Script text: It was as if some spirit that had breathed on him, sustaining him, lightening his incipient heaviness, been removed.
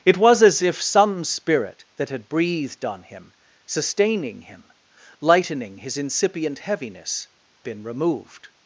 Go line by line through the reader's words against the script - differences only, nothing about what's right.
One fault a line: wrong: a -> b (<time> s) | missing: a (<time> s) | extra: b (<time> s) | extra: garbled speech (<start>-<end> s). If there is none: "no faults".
no faults